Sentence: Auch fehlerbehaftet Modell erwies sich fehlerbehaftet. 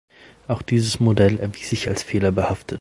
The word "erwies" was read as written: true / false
true